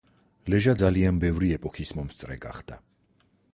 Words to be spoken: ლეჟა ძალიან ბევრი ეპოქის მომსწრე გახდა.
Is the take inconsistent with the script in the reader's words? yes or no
no